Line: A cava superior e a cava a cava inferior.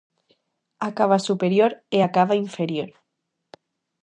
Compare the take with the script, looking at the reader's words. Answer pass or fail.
fail